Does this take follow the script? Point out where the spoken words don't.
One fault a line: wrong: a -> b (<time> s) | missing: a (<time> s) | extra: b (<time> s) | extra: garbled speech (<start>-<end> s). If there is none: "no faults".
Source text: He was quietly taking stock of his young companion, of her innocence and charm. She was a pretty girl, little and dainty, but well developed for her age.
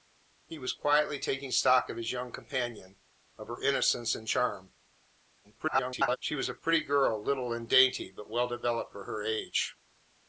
extra: garbled speech (5.4-6.2 s)